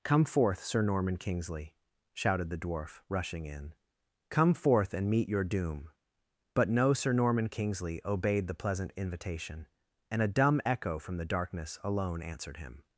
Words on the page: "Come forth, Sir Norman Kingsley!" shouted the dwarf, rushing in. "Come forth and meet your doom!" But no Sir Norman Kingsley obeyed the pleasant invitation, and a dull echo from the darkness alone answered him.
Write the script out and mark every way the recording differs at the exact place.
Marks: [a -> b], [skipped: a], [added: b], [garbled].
"Come forth, Sir Norman Kingsley!" shouted the dwarf, rushing in. "Come forth and meet your doom!" But no Sir Norman Kingsley obeyed the pleasant invitation, and a [dull -> dumb] echo from the darkness alone answered him.